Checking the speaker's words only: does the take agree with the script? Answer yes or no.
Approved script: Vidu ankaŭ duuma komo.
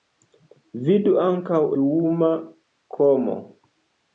yes